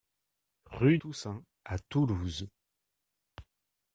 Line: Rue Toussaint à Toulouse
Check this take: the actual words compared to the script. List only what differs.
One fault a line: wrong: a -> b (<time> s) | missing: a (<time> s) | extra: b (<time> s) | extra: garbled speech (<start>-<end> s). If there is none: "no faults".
no faults